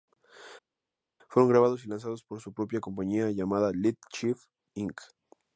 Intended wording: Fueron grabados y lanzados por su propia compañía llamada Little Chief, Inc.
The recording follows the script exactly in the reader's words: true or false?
true